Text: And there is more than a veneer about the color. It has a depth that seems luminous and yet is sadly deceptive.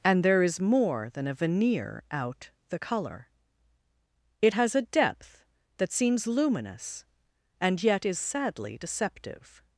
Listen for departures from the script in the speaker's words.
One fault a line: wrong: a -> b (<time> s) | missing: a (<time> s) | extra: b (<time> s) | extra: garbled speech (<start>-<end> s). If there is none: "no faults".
wrong: about -> out (2.1 s)